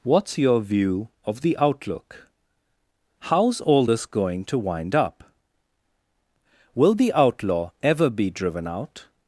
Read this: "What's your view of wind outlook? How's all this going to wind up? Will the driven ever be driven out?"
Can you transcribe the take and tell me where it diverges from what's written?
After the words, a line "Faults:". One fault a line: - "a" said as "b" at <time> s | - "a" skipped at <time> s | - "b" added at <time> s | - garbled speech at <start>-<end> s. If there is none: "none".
"What's your view of the outlook? How's all this going to wind up? Will the outlaw ever be driven out?"
Faults:
- "wind" said as "the" at 1.4 s
- "driven" said as "outlaw" at 7.1 s